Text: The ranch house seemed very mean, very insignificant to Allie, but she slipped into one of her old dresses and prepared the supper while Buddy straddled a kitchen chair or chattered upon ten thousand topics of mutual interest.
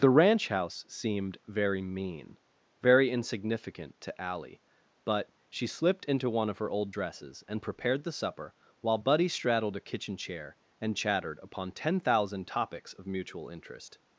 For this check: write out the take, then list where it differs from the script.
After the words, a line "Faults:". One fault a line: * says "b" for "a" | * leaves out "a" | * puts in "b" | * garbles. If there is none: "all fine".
The ranch house seemed very mean, very insignificant to Allie, but she slipped into one of her old dresses and prepared the supper while Buddy straddled a kitchen chair and chattered upon ten thousand topics of mutual interest.
Faults:
* says "and" for "or"